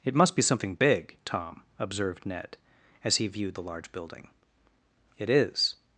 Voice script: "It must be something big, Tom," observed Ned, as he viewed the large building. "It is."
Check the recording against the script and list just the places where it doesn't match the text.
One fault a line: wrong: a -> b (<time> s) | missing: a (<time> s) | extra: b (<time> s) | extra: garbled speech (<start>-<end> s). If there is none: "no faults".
no faults